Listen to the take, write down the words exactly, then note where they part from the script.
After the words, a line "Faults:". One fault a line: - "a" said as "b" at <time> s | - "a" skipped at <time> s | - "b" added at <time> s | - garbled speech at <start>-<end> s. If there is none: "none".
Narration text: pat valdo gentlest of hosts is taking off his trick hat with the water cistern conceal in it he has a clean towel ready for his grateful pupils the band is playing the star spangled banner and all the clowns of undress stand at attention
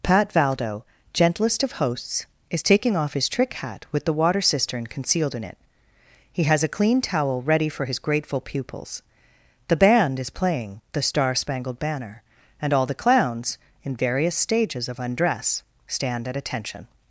pat valdo gentlest of hosts is taking off his trick hat with the water cistern concealed in it he has a clean towel ready for his grateful pupils the band is playing the star spangled banner and all the clowns in various stages of undress stand at attention
Faults:
- "conceal" said as "concealed" at 4.9 s
- "in various stages" added at 13.8 s